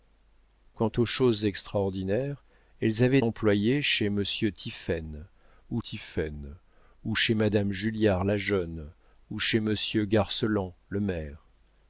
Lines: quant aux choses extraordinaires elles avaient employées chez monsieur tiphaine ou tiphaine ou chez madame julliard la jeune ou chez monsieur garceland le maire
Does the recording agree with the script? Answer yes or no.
yes